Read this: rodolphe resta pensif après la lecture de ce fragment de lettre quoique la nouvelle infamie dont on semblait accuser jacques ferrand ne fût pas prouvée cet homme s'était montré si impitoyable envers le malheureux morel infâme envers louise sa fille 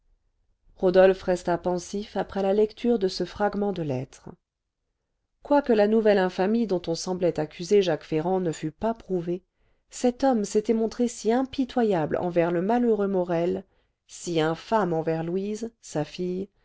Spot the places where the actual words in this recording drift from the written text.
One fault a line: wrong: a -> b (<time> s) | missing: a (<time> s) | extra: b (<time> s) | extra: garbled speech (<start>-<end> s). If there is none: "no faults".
extra: si (14.1 s)